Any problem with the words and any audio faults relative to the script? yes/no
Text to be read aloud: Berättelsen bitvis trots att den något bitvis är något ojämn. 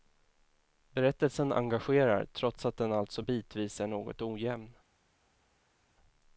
yes